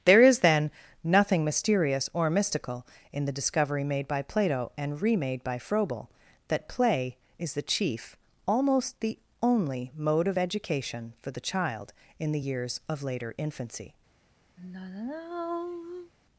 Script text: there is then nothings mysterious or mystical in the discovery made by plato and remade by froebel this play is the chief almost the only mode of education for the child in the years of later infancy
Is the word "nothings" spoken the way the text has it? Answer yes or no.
no